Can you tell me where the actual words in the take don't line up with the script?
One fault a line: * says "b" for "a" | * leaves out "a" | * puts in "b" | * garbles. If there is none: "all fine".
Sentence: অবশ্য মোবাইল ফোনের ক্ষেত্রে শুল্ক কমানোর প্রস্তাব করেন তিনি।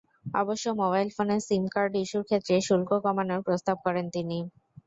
* puts in "সিম কার্ড ইস্যুর"